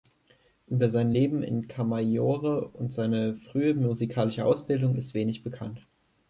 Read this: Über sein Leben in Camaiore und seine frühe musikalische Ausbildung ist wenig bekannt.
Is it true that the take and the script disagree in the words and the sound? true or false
false